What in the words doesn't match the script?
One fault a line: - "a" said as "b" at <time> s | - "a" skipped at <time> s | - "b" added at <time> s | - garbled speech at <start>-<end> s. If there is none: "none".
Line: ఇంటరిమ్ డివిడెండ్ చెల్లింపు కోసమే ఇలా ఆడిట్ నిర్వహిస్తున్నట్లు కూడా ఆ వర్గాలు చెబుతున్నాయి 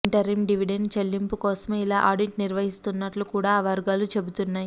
none